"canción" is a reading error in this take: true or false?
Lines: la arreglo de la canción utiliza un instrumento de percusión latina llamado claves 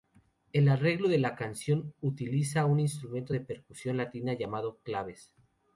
false